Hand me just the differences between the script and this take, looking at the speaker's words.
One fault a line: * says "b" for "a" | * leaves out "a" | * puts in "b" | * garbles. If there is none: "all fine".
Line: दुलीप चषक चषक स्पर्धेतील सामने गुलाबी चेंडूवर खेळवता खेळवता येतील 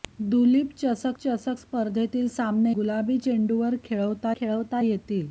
all fine